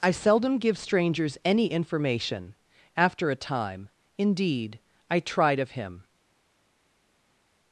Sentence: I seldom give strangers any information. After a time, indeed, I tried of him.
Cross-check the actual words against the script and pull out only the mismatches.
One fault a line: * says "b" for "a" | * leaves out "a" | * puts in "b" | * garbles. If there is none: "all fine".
all fine